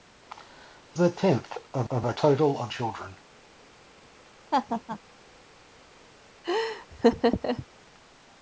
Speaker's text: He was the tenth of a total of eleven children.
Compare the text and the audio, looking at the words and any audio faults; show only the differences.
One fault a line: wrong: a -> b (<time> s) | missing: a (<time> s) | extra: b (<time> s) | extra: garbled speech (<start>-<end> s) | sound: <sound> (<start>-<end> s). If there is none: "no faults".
missing: was (1.0 s)
extra: of (1.9 s)
missing: eleven (2.7 s)
sound: laugh (4.5-5.0 s)
sound: laugh (6.4-7.7 s)